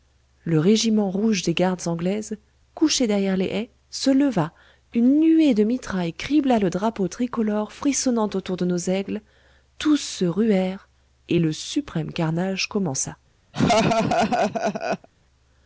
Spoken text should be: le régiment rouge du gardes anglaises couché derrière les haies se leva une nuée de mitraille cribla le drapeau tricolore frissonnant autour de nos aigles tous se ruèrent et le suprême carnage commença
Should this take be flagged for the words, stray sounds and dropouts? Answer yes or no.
yes